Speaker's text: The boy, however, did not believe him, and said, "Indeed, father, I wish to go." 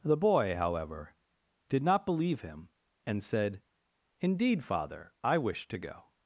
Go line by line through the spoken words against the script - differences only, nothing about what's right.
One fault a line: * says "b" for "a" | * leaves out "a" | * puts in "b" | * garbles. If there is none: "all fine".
all fine